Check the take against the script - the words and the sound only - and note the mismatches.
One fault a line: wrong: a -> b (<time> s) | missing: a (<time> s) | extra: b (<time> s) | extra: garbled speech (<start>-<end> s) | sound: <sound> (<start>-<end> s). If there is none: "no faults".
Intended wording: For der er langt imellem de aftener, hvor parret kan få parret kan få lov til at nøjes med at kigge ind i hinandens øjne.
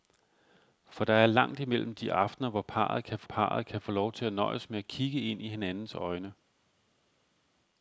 no faults